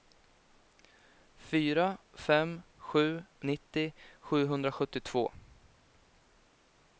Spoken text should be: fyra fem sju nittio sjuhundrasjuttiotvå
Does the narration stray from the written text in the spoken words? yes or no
no